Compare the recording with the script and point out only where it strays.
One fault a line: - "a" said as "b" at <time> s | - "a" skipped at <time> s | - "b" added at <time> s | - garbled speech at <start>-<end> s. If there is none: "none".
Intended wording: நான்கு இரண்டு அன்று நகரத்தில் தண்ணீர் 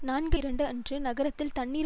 none